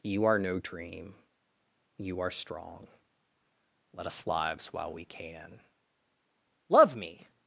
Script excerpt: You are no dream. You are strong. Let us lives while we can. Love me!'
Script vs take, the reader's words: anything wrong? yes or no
no